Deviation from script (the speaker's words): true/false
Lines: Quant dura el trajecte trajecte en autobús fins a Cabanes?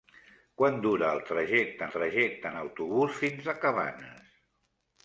false